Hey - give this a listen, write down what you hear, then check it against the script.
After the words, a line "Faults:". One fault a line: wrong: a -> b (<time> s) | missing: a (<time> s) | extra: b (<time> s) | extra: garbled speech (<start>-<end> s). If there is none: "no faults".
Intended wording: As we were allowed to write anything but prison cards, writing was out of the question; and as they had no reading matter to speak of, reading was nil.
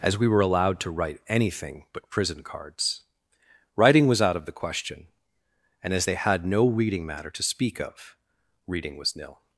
As we were allowed to write anything but prison cards, writing was out of the question; and as they had no reading matter to speak of, reading was nil.
Faults:
no faults